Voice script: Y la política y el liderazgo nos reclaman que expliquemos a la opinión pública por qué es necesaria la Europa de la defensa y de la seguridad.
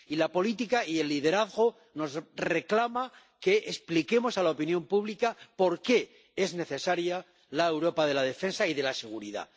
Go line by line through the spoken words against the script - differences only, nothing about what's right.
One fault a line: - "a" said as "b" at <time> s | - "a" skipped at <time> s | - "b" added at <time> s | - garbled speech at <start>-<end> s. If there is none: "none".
none